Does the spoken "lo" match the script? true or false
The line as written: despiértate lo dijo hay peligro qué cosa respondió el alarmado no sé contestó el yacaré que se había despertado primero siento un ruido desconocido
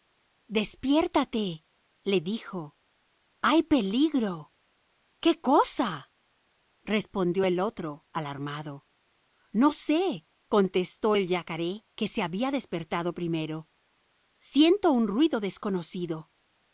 false